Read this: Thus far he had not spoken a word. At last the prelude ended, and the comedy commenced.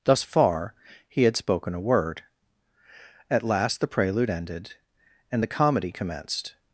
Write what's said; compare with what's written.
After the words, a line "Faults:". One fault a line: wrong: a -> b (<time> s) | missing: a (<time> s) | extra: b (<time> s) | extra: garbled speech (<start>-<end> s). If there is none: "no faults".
Thus far he had spoken a word. At last the prelude ended, and the comedy commenced.
Faults:
missing: not (1.4 s)